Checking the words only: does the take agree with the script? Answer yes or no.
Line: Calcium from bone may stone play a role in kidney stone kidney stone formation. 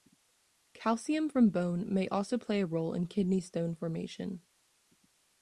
no